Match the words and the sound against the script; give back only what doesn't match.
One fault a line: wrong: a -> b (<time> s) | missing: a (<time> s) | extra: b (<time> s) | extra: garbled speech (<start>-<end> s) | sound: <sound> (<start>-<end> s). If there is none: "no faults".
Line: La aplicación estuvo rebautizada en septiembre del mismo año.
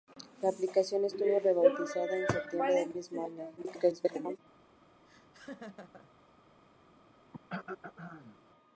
extra: garbled speech (3.6-4.4 s)
sound: laugh (5.1-6.1 s)
sound: throat clearing (7.3-8.4 s)